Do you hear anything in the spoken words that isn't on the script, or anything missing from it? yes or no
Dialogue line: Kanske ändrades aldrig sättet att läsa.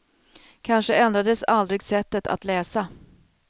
no